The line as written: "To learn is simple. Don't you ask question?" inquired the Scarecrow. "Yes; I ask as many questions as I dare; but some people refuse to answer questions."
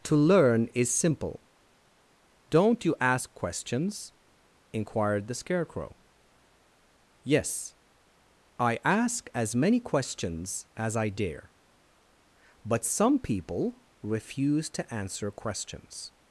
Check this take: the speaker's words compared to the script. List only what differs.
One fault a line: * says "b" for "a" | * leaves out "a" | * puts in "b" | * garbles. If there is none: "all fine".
* says "questions" for "question"